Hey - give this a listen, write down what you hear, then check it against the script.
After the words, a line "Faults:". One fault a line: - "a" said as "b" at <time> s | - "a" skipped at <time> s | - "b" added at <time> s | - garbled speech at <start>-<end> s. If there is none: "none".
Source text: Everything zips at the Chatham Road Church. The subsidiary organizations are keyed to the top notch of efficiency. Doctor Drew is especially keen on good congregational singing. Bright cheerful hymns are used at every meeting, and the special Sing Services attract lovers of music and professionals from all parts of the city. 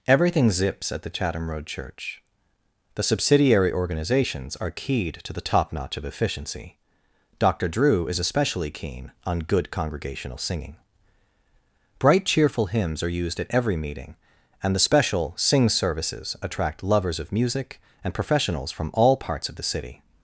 Everything zips at the Chatham Road Church. The subsidiary organizations are keyed to the top notch of efficiency. Doctor Drew is especially keen on good congregational singing. Bright cheerful hymns are used at every meeting, and the special Sing Services attract lovers of music and professionals from all parts of the city.
Faults:
none